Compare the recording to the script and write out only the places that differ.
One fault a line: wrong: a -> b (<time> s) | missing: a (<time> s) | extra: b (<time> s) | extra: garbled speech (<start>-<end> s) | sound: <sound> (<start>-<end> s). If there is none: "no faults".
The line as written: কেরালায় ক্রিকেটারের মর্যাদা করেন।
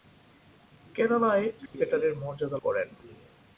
sound: dropout (1.7-1.7 s)